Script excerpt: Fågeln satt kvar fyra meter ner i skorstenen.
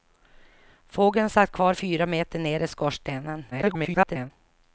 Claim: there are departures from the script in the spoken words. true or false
true